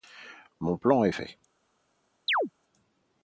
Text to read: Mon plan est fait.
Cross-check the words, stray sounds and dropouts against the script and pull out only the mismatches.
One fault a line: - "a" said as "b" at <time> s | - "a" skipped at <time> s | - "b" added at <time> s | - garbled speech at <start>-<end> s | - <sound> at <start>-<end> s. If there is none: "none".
- chirp at 2.3-2.5 s